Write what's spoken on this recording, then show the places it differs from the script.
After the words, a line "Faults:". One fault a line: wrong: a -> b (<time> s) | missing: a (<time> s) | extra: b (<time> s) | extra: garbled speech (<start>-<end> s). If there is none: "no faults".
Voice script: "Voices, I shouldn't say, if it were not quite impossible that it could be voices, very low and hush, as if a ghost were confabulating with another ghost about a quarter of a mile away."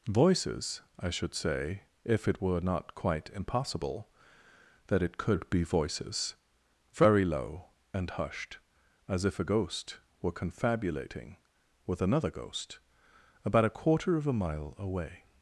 "Voices, I should say, if it were not quite impossible that it could be voices, very low and hushed, as if a ghost were confabulating with another ghost about a quarter of a mile away."
Faults:
wrong: shouldn't -> should (1.1 s)
wrong: hush -> hushed (8.1 s)